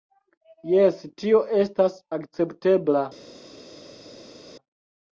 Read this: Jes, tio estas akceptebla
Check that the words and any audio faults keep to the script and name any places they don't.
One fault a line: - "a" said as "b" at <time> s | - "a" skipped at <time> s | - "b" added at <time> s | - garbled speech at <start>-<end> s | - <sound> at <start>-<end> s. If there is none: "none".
none